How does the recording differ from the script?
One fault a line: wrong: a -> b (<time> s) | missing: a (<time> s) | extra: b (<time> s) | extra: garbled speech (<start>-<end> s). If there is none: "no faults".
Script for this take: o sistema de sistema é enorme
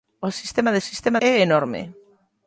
no faults